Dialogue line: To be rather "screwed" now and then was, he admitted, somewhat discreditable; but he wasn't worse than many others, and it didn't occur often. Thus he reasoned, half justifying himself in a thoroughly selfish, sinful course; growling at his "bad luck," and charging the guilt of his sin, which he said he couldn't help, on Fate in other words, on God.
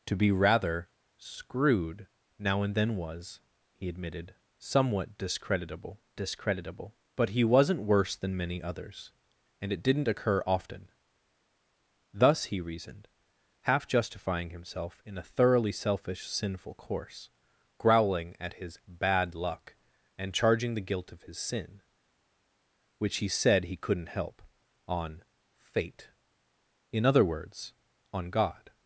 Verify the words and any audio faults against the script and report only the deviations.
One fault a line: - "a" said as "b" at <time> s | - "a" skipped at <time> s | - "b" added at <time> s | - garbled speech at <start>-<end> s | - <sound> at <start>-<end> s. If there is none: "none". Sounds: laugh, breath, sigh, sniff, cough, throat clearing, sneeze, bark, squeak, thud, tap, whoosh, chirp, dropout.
- "discreditable" added at 6.2 s